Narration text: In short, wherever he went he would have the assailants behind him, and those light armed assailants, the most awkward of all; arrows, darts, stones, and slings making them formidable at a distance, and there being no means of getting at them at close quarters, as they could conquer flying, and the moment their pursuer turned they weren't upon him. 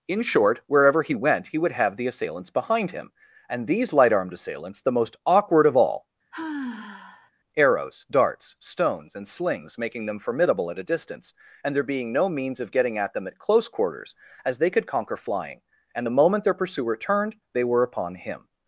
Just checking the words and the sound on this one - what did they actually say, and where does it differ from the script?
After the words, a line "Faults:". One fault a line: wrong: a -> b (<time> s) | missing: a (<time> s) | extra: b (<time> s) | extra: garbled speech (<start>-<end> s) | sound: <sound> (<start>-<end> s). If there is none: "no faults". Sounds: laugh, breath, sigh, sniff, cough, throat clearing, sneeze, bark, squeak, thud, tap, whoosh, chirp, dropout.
In short, wherever he went he would have the assailants behind him, and these light armed assailants, the most awkward of all; arrows, darts, stones, and slings making them formidable at a distance, and there being no means of getting at them at close quarters, as they could conquer flying, and the moment their pursuer turned they were upon him.
Faults:
wrong: those -> these (3.7 s)
sound: sigh (6.3-7.3 s)
wrong: weren't -> were (17.6 s)